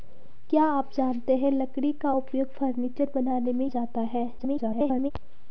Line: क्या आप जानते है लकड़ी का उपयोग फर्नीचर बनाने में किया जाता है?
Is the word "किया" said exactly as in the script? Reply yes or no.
no